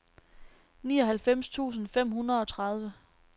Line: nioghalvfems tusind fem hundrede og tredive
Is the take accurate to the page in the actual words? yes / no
yes